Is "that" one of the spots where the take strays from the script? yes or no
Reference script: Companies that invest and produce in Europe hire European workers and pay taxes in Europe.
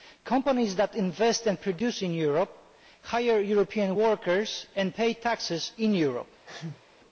no